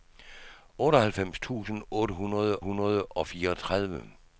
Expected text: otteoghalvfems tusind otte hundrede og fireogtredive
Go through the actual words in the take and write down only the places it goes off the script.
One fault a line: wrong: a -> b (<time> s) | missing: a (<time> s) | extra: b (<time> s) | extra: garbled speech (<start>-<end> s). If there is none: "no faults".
extra: hundrede (2.6 s)